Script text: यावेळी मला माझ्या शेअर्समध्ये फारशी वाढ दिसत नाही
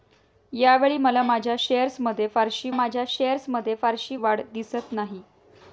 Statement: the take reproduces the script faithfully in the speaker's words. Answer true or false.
false